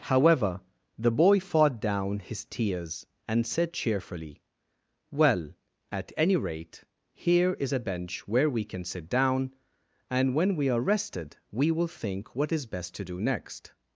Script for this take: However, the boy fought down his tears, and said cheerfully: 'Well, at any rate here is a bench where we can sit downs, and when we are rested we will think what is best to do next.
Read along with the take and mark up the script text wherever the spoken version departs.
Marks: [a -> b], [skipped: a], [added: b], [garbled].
However, the boy fought down his tears, and said cheerfully: 'Well, at any rate here is a bench where we can sit [downs, -> down] and when we are rested we will think what is best to do next.